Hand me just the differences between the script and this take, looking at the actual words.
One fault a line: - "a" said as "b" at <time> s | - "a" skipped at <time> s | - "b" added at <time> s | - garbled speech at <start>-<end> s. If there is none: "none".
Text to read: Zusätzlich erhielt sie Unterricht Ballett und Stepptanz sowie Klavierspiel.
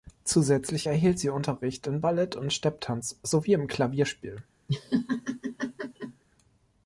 - "in" added at 1.9 s
- "im" added at 3.5 s